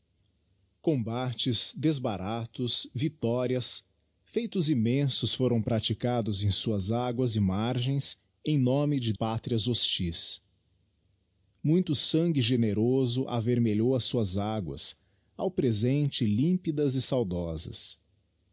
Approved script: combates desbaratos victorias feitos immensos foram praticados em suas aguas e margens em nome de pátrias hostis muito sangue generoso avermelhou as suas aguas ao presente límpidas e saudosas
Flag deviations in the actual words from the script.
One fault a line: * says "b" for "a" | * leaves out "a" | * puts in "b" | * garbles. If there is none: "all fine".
all fine